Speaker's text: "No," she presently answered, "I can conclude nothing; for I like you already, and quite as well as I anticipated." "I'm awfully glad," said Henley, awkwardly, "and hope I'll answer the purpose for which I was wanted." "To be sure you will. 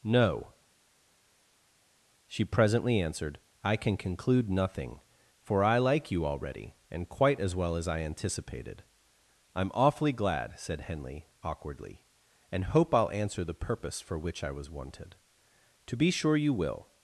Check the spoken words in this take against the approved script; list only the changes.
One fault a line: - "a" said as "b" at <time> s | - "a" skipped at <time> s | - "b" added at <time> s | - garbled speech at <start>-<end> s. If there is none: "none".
none